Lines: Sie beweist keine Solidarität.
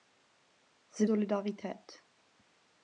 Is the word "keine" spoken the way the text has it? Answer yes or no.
no